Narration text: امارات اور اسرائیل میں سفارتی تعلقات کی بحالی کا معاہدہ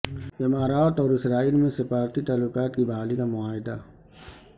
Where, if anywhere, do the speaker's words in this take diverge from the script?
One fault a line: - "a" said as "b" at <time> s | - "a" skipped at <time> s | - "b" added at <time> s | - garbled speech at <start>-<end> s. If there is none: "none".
none